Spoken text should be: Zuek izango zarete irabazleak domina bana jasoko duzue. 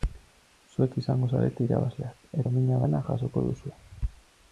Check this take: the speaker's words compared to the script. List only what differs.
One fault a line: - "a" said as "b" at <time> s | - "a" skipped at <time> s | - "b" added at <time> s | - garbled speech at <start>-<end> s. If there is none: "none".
none